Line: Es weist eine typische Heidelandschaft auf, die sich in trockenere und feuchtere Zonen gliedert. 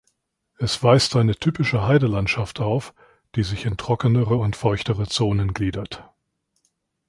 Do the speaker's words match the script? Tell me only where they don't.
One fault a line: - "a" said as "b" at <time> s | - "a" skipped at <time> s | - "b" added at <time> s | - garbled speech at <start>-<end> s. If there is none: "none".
none